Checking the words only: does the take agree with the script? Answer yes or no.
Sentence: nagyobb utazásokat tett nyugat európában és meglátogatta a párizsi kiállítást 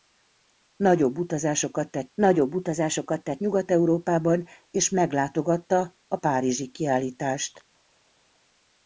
no